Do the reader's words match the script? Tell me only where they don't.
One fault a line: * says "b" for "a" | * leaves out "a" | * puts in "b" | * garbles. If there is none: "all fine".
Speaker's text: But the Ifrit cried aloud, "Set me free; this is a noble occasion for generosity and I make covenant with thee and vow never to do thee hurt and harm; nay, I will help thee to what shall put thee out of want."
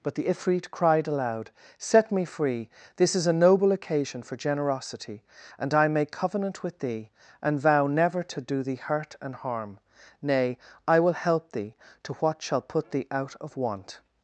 all fine